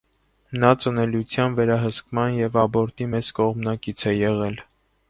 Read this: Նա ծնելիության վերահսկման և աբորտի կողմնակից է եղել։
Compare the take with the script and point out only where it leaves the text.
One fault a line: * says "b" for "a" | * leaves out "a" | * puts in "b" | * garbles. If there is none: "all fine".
* puts in "մեծ"